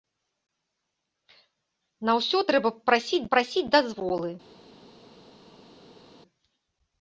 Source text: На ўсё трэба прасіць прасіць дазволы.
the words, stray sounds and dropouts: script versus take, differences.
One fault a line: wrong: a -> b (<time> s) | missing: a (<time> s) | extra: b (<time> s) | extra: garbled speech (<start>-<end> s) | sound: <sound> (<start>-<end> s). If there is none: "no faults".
no faults